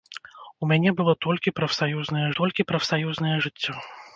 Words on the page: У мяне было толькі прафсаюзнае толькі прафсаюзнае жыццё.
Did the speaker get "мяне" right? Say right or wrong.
right